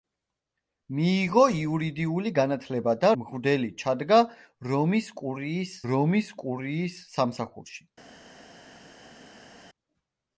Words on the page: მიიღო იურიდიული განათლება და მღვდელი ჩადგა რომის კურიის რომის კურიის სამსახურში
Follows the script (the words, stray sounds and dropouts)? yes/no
yes